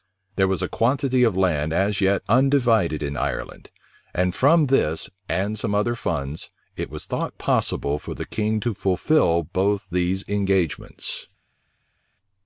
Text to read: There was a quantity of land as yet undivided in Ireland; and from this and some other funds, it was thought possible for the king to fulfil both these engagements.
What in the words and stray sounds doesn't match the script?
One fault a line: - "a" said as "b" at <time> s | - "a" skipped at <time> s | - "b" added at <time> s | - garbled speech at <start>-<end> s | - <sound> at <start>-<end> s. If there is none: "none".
none